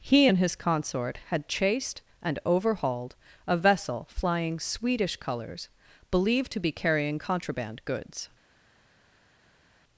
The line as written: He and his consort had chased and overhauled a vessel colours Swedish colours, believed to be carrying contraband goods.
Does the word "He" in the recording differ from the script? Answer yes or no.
no